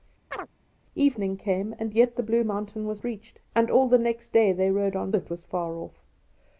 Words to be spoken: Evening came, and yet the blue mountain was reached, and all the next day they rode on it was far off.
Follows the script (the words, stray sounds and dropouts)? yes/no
no